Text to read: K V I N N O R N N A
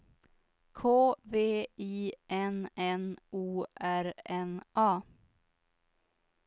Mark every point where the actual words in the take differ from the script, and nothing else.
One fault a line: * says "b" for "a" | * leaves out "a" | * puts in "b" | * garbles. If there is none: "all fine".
* leaves out "N"